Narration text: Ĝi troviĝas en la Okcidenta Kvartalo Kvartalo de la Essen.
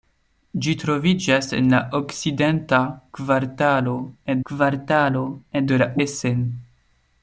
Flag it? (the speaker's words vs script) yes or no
no